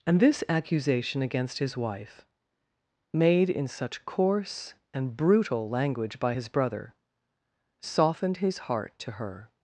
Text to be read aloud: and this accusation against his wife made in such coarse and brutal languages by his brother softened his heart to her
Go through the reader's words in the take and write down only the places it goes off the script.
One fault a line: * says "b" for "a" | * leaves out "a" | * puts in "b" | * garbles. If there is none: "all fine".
* says "language" for "languages"